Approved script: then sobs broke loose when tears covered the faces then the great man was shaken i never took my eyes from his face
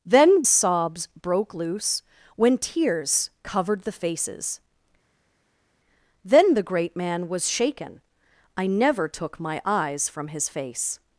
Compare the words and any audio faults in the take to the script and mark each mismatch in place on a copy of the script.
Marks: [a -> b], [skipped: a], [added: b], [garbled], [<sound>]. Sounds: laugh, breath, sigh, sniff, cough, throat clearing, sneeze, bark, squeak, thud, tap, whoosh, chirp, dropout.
then sobs broke loose when tears covered the faces then the great man was shaken i never took my eyes from his face